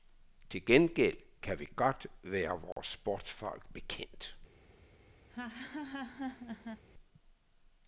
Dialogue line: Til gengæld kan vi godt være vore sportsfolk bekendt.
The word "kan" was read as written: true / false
true